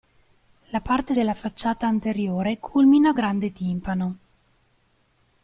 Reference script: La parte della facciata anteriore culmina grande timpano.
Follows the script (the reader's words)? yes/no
yes